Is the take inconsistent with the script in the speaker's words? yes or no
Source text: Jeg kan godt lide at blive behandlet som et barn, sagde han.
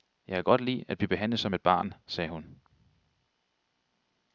yes